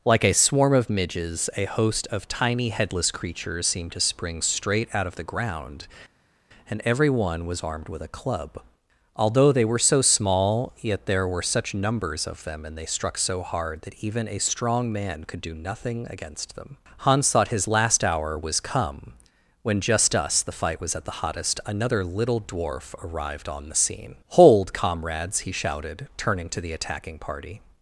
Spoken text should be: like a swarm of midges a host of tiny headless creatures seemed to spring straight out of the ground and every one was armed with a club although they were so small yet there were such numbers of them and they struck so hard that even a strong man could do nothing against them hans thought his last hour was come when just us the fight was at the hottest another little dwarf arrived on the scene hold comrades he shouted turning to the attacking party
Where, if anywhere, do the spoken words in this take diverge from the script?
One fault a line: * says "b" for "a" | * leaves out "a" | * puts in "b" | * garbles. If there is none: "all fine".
all fine